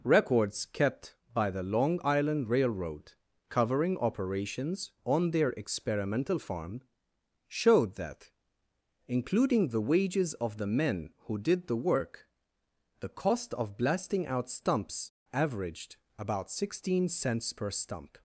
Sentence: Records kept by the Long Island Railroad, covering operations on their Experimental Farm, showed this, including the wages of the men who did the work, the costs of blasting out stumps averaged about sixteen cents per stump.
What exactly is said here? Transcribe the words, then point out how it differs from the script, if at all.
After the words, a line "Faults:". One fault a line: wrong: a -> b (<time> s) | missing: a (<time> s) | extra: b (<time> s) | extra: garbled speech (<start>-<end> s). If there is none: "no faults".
Records kept by the Long Island Railroad, covering operations on their Experimental Farm, showed that, including the wages of the men who did the work, the cost of blasting out stumps averaged about sixteen cents per stump.
Faults:
wrong: this -> that (8.0 s)
wrong: costs -> cost (13.1 s)